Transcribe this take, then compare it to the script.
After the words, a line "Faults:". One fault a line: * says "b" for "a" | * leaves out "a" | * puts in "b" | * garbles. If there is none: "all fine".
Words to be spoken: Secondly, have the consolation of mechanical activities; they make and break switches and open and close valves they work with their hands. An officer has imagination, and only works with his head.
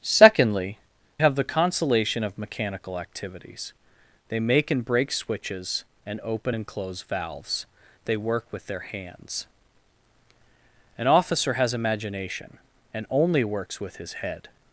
Secondly, have the consolation of mechanical activities; they make and break switches and open and close valves they work with their hands. An officer has imagination, and only works with his head.
Faults:
all fine